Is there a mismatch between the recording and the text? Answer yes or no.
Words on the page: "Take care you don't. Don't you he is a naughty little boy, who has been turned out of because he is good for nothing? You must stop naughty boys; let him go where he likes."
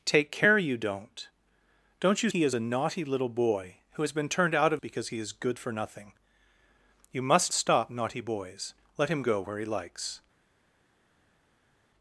no